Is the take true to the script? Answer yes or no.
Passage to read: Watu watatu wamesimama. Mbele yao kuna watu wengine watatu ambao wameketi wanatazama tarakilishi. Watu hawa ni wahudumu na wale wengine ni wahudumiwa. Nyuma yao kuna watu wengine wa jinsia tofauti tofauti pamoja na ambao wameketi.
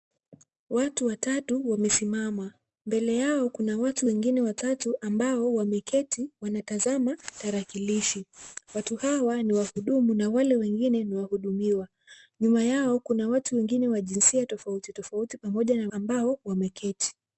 yes